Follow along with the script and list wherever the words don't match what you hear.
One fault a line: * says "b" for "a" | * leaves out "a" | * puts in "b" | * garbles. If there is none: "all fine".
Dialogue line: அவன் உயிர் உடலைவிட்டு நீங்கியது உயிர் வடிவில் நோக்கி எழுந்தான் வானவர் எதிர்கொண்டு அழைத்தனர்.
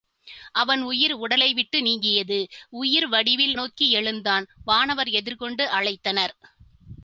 all fine